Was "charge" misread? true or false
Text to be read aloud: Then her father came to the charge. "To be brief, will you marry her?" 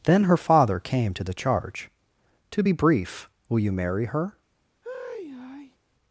false